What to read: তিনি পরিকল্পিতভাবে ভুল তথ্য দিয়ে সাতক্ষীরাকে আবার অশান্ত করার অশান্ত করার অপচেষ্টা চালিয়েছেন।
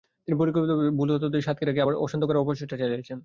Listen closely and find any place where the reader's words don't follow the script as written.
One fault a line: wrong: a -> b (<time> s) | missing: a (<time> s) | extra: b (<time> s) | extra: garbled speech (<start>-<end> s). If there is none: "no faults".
missing: অশান্ত করার (2.4 s)